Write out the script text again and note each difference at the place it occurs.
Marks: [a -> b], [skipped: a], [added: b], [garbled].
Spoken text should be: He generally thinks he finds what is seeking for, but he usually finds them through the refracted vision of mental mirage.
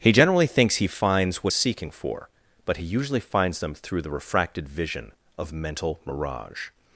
He generally thinks he finds what is seeking for, but he usually finds them through the refracted vision of mental mirage.